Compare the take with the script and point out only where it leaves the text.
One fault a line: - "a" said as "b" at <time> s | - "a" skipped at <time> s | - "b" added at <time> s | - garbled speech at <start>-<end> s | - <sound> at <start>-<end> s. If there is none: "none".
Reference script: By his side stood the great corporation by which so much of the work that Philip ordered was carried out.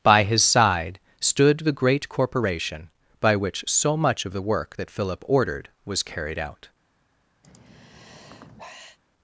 - sigh at 7.4-9.0 s